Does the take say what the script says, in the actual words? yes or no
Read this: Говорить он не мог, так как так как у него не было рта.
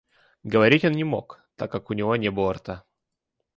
no